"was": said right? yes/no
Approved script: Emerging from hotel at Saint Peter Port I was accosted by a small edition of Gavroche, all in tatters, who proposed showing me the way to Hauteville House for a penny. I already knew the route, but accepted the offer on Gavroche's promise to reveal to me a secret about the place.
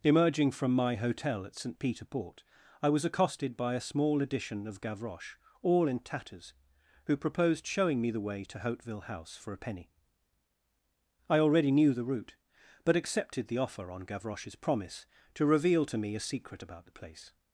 yes